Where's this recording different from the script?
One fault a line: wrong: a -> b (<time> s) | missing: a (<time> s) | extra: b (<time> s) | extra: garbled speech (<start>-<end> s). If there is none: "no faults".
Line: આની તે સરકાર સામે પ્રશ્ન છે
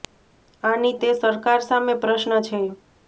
no faults